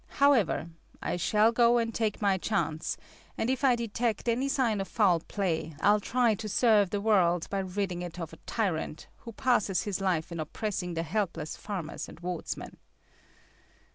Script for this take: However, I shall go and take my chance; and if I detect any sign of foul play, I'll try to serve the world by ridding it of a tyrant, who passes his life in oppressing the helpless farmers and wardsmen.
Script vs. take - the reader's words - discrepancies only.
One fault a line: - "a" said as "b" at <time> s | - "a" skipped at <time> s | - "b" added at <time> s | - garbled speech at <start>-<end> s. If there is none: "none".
none